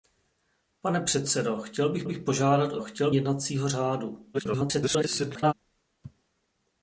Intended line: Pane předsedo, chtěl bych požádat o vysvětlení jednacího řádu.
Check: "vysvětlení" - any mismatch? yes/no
yes